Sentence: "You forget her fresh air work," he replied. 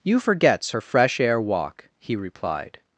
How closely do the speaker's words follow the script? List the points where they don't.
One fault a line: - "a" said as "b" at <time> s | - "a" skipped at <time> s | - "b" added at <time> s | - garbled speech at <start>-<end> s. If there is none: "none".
- "forget" said as "forgets" at 0.2 s
- "work" said as "walk" at 1.4 s